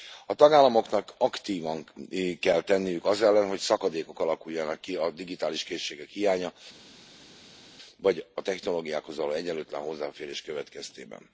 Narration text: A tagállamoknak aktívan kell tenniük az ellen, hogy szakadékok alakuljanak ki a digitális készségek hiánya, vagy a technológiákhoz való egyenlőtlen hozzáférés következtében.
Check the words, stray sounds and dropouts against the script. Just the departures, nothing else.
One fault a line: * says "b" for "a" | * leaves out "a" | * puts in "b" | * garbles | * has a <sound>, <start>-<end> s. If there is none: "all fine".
all fine